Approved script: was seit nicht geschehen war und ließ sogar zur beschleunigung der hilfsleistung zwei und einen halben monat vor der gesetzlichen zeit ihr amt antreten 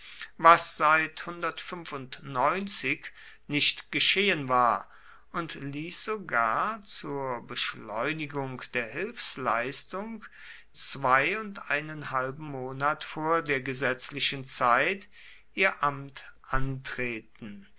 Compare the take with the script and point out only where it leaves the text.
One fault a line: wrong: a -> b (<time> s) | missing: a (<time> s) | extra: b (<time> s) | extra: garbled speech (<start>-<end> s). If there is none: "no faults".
no faults